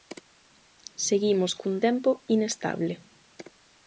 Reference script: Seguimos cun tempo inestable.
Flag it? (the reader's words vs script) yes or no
no